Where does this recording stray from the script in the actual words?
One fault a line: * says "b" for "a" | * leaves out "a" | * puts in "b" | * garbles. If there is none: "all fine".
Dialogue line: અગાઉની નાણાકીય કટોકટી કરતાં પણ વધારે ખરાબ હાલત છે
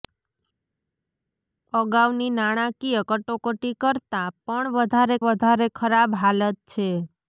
* puts in "વધારે"